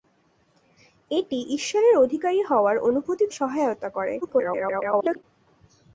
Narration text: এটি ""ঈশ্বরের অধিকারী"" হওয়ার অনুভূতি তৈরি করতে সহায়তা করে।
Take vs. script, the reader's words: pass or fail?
fail